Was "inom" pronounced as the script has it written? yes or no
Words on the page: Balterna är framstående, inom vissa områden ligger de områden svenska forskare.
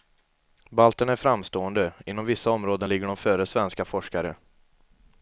yes